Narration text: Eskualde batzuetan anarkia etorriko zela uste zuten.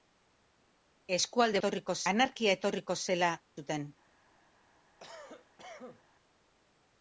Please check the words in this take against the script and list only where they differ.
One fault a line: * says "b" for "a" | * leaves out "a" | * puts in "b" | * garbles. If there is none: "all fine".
* says "etorriko" for "batzuetan"
* leaves out "uste"